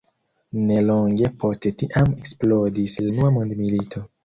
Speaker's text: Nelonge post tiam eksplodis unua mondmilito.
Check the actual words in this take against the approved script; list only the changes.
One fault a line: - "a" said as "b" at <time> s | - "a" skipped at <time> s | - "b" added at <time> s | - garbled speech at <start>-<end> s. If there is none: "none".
none